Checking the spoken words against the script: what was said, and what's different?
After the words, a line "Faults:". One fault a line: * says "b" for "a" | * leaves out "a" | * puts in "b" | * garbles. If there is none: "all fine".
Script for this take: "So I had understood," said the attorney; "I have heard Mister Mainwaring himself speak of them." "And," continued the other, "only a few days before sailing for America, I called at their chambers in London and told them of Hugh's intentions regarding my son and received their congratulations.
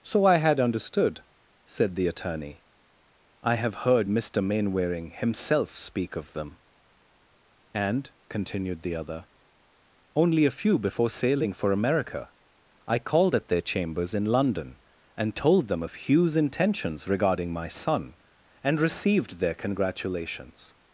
"So I had understood," said the attorney; "I have heard Mister Mainwaring himself speak of them." "And," continued the other, "only a few before sailing for America, I called at their chambers in London and told them of Hugh's intentions regarding my son and received their congratulations.
Faults:
* leaves out "days"